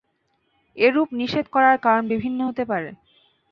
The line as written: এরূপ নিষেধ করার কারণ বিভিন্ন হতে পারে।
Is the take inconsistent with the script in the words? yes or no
no